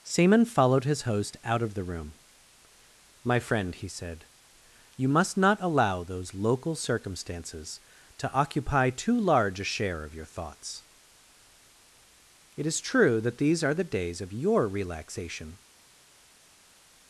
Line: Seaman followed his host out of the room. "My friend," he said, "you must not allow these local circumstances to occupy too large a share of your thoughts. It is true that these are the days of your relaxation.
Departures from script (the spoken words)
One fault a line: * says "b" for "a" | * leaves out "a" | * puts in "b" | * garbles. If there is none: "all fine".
* says "those" for "these"